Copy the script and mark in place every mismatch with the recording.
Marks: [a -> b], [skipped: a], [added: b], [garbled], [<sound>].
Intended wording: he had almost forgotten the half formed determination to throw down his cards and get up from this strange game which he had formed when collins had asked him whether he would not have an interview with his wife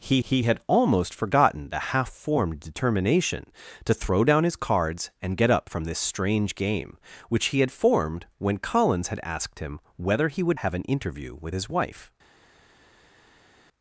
he [added: he] had almost forgotten the half formed determination to throw down his cards and get up from this strange game which he had formed when collins had asked him whether he would [skipped: not] have an interview with his wife